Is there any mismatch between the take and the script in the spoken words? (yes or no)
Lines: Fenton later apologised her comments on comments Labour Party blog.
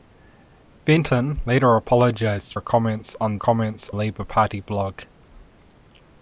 no